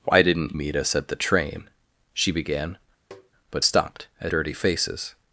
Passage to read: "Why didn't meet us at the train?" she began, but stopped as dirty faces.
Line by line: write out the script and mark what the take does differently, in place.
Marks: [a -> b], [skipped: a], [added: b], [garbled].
"Why didn't meet us at the train?" she began, but stopped as dirty faces.